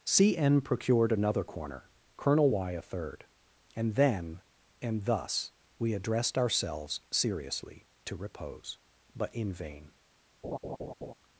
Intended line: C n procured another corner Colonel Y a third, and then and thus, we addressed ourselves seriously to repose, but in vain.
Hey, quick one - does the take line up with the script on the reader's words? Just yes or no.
yes